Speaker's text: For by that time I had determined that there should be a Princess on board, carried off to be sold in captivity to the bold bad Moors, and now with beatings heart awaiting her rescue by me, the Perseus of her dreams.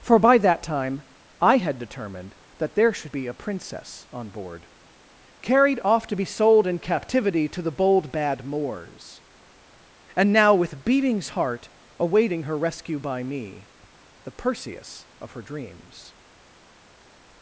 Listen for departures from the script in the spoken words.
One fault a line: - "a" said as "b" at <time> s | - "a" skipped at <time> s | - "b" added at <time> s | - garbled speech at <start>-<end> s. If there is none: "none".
none